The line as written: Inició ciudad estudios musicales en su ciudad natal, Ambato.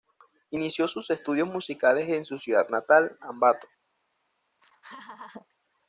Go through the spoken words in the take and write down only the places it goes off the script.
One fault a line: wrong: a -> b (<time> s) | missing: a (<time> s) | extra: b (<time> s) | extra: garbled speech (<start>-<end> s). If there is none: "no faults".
wrong: ciudad -> sus (0.9 s)